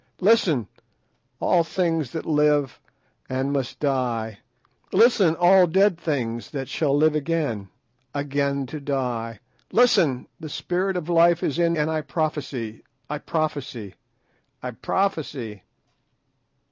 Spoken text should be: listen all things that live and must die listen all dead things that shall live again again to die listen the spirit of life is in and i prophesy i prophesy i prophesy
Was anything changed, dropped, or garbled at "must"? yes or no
no